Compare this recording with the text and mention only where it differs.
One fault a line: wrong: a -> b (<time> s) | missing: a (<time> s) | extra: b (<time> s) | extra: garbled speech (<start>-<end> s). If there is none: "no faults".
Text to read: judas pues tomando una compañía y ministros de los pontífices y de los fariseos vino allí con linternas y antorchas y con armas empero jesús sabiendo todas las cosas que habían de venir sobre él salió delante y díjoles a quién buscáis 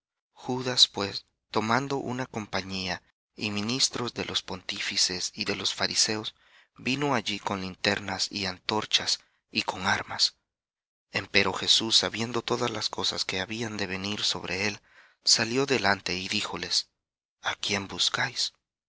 no faults